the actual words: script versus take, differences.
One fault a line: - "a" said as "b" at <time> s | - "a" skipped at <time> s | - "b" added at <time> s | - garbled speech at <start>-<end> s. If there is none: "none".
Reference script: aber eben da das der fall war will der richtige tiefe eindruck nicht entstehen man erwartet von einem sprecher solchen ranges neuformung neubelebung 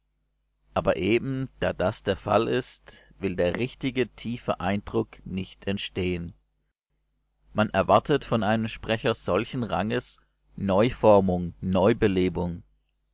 - "war" said as "ist" at 2.5 s